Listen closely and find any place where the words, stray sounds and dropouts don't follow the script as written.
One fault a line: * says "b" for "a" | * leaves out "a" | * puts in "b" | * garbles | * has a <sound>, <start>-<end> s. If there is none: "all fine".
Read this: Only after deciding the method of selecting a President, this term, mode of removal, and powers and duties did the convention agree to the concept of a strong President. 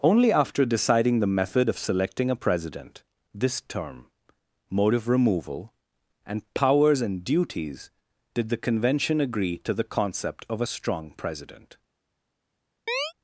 * has a chirp, 12.9-13.1 s